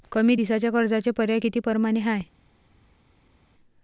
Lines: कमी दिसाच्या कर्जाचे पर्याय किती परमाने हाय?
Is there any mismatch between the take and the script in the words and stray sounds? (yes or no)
no